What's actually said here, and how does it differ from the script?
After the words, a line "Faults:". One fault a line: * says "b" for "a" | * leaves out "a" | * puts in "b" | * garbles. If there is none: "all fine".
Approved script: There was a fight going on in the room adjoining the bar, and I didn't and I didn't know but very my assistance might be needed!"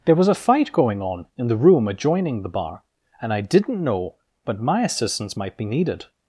There was a fight going on in the room adjoining the bar, and I didn't know but my assistance might be needed!"
Faults:
* leaves out "and I didn't"
* leaves out "very"